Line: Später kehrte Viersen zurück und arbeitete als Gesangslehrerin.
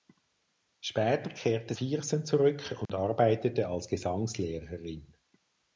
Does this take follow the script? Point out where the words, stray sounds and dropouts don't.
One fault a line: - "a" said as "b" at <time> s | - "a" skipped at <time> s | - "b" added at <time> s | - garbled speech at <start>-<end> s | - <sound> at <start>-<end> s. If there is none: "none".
- dropout at 2.9-2.9 s